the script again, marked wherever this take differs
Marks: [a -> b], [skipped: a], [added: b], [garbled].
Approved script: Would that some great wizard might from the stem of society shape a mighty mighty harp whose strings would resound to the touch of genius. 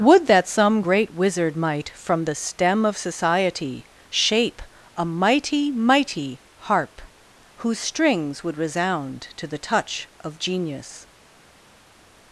Would that some great wizard might from the stem of society shape a mighty mighty harp whose strings would resound to the touch of genius.